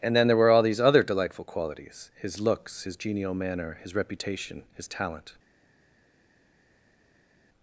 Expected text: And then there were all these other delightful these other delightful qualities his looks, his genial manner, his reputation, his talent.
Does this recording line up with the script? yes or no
no